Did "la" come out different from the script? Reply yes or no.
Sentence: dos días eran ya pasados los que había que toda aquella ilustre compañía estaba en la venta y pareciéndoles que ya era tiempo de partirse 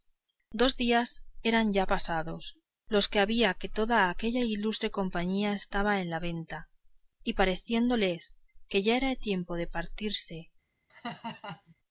no